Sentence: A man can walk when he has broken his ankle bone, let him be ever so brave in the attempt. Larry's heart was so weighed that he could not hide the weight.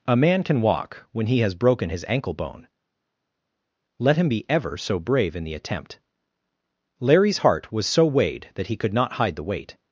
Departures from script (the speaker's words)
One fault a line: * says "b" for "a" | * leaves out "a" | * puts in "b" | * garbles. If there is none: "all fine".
all fine